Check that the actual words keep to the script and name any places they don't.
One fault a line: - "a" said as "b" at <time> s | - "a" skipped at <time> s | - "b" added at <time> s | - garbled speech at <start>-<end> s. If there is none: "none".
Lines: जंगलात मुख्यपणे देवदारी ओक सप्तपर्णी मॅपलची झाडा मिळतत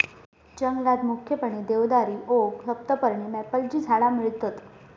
none